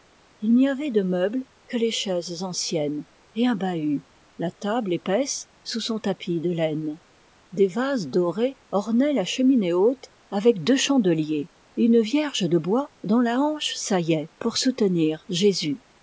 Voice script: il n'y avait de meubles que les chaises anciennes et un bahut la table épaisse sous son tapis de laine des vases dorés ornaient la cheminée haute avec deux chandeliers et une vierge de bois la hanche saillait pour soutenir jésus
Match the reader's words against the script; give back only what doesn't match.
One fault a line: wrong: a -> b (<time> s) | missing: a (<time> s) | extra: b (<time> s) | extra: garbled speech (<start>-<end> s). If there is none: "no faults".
extra: dont (13.0 s)